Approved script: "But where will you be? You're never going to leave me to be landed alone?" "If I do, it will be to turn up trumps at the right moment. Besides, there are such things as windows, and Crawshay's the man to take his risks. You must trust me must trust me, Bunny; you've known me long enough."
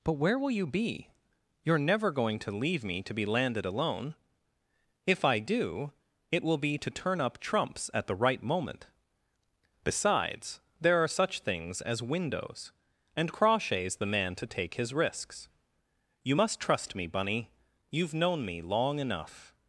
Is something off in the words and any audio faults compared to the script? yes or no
yes